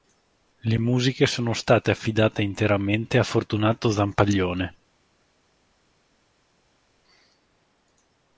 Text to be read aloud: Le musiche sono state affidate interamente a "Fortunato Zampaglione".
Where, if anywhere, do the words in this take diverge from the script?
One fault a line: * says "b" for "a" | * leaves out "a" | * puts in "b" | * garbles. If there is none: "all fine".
all fine